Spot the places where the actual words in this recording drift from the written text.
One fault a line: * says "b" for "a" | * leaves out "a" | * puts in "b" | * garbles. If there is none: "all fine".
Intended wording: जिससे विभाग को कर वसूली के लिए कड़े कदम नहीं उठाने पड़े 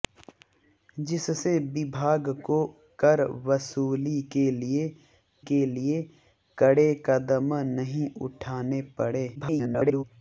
* puts in "के लिए"
* garbles